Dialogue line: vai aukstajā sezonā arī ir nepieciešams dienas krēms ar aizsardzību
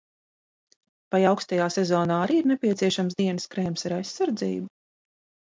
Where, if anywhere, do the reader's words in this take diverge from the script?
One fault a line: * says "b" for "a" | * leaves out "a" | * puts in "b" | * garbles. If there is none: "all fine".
all fine